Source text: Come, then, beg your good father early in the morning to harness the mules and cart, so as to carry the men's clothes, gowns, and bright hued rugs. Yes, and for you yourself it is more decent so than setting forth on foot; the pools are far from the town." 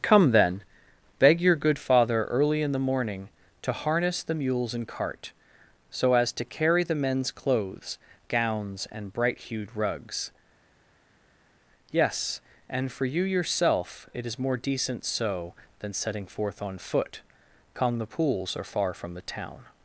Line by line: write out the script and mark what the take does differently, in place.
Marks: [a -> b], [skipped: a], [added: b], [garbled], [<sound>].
Come, then, beg your good father early in the morning to harness the mules and cart, so as to carry the men's clothes, gowns, and bright hued rugs. Yes, and for you yourself it is more decent so than setting forth on foot; [added: come] the pools are far from the town."